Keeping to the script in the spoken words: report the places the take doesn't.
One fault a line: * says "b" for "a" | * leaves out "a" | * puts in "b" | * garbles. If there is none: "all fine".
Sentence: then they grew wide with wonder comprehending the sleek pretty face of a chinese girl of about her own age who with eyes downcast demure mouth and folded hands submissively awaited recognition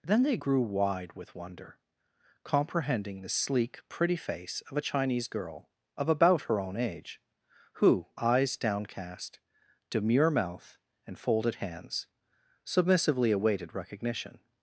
* leaves out "with"